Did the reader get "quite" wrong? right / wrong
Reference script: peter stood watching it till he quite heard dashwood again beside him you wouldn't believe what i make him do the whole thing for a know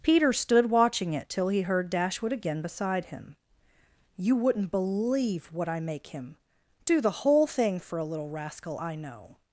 wrong